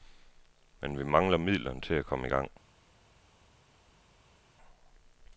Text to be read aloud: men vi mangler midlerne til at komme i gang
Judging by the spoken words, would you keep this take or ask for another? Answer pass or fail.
pass